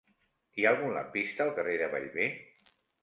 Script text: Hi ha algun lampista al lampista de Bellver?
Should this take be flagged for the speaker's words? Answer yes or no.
yes